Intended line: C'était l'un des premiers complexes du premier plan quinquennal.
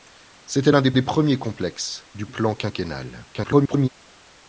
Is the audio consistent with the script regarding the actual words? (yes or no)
no